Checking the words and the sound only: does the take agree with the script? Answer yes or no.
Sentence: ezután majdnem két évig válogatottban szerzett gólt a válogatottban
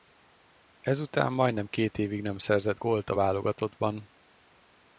no